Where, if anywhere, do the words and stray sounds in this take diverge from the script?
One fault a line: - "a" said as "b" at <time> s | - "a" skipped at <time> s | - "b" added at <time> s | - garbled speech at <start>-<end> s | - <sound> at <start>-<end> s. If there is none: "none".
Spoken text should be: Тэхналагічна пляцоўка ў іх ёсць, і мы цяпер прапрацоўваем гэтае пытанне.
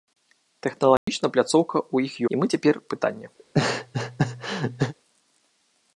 - dropout at 1.0-1.1 s
- "ёсць" skipped at 2.1 s
- "прапрацоўваем гэтае" skipped at 2.7 s
- laugh at 3.4-4.9 s